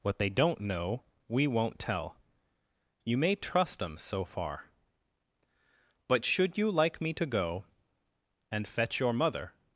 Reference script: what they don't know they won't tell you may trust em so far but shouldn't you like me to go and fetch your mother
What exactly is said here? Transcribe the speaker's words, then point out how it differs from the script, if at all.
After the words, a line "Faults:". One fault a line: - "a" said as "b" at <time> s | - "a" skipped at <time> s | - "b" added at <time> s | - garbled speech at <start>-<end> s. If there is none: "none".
what they don't know we won't tell you may trust em so far but should you like me to go and fetch your mother
Faults:
- "they" said as "we" at 1.3 s
- "shouldn't" said as "should" at 6.2 s